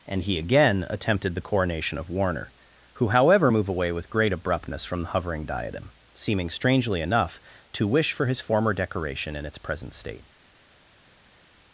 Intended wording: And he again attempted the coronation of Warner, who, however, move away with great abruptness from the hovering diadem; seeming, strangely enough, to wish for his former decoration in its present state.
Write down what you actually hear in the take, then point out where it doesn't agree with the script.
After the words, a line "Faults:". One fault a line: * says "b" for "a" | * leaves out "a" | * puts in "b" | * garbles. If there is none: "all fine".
And he again attempted the coronation of Warner, who, however, move away with great abruptness from the hovering diadem; seeming, strangely enough, to wish for his former decoration in its present state.
Faults:
all fine